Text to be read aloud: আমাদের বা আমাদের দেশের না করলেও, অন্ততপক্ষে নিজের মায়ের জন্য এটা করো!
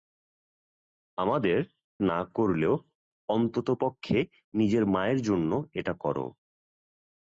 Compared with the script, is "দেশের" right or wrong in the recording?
wrong